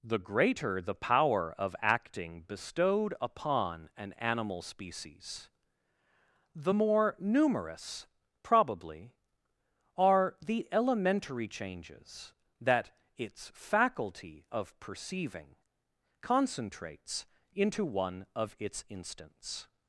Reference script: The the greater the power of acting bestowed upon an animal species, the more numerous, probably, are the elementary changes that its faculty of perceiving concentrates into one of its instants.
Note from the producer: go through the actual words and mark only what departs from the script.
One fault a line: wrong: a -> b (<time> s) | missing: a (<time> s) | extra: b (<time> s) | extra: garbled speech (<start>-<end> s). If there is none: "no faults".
missing: the (0.2 s)